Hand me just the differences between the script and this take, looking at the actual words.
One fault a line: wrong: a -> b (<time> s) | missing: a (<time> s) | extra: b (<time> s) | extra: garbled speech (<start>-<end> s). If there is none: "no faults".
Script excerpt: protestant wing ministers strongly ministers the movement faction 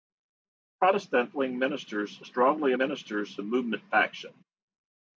no faults